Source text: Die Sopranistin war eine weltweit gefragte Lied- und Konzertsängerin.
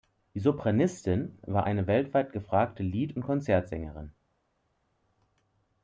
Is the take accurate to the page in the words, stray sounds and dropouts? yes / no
yes